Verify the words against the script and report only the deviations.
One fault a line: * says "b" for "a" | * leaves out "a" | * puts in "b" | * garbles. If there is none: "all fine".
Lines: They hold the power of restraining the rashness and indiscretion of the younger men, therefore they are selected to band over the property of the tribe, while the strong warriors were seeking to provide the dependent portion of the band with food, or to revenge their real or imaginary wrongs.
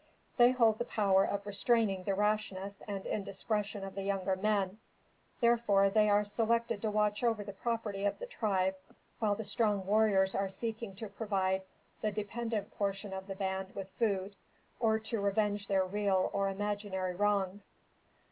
* says "watch" for "band"
* says "are" for "were"